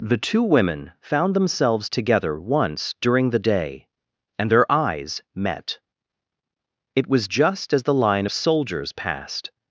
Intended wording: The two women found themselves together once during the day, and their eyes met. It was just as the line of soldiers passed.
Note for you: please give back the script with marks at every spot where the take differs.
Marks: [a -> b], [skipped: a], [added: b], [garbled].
The two women found themselves together once during the day, and their eyes met. It was just as the line of soldiers passed.